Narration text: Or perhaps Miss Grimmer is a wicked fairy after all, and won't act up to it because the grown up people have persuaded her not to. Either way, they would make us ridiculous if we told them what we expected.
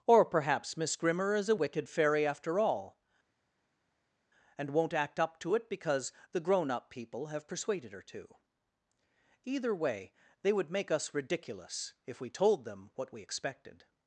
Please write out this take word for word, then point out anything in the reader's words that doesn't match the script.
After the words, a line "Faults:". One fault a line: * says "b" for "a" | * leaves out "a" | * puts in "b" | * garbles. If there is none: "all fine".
Or perhaps Miss Grimmer is a wicked fairy after all, and won't act up to it because the grown up people have persuaded her to. Either way, they would make us ridiculous if we told them what we expected.
Faults:
* leaves out "not"